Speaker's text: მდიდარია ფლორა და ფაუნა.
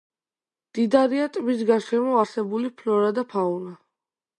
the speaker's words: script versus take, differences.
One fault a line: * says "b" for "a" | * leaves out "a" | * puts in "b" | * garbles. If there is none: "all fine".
* puts in "ტბის გარშემო არსებული"